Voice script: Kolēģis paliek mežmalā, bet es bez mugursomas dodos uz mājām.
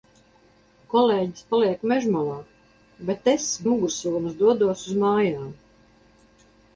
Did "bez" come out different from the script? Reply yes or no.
yes